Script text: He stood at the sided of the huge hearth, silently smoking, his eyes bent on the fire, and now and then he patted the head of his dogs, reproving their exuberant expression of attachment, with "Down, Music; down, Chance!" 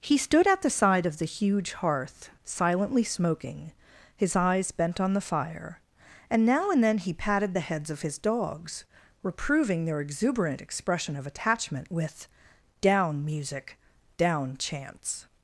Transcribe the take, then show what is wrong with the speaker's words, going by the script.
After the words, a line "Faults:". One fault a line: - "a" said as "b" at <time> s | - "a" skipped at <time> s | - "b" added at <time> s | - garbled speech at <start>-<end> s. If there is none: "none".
He stood at the side of the huge hearth, silently smoking, his eyes bent on the fire, and now and then he patted the heads of his dogs, reproving their exuberant expression of attachment, with "Down, Music; down, Chance!"
Faults:
- "sided" said as "side" at 0.7 s
- "head" said as "heads" at 7.6 s